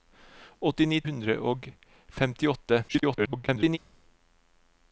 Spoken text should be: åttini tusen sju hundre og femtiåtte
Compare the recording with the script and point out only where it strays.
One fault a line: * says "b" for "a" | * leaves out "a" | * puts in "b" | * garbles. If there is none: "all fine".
* leaves out "tusen sju"
* garbles